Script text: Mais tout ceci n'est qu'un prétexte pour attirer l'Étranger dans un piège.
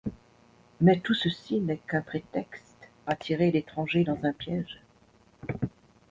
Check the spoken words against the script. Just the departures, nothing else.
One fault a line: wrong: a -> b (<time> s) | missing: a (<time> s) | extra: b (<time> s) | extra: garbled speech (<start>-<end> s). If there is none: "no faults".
missing: pour (2.9 s)